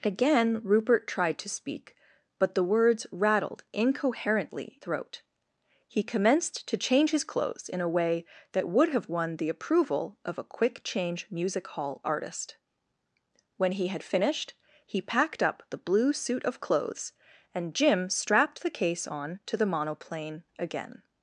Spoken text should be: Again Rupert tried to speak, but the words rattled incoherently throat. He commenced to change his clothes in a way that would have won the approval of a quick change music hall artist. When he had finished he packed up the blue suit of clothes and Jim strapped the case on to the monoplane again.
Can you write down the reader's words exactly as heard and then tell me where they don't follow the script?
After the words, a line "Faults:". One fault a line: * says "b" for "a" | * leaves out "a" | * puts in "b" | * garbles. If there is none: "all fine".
Again Rupert tried to speak, but the words rattled incoherently throat. He commenced to change his clothes in a way that would have won the approval of a quick change music hall artist. When he had finished he packed up the blue suit of clothes and Jim strapped the case on to the monoplane again.
Faults:
all fine